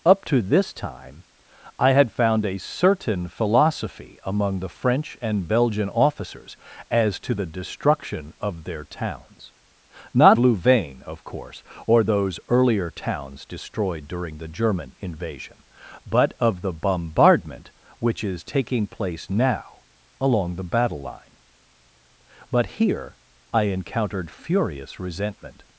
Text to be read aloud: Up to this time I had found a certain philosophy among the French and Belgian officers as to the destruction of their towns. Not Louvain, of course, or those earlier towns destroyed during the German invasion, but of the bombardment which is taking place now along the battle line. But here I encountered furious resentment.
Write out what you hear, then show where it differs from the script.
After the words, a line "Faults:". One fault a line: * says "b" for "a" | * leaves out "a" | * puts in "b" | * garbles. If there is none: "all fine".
Up to this time I had found a certain philosophy among the French and Belgian officers as to the destruction of their towns. Not Louvain, of course, or those earlier towns destroyed during the German invasion, but of the bombardment which is taking place now along the battle line. But here I encountered furious resentment.
Faults:
all fine